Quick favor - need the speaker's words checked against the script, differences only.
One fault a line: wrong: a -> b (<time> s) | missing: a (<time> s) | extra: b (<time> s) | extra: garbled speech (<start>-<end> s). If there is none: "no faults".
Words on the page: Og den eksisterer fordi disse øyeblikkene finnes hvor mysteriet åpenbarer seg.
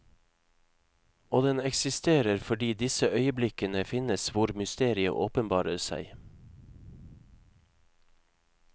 no faults